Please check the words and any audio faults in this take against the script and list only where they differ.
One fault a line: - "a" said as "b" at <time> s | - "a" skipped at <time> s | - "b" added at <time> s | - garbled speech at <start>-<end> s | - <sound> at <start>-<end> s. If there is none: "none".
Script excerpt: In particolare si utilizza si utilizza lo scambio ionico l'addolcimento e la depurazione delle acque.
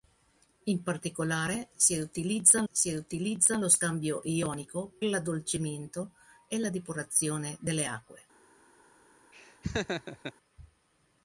- laugh at 9.3-10.3 s